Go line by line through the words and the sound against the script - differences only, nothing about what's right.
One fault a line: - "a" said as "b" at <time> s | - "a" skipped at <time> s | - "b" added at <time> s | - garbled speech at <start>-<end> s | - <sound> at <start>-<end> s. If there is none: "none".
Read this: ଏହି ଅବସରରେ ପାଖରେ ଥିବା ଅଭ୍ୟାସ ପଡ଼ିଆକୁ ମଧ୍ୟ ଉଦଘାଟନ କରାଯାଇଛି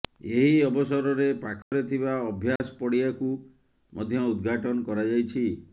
- dropout at 1.6-1.7 s
- dropout at 2.6-2.6 s